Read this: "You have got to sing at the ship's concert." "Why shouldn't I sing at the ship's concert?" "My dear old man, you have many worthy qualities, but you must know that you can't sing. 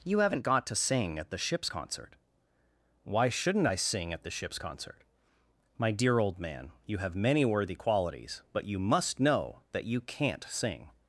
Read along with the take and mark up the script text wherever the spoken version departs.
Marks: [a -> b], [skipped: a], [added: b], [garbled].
"You [have -> haven't] got to sing at the ship's concert." "Why shouldn't I sing at the ship's concert?" "My dear old man, you have many worthy qualities, but you must know that you can't sing.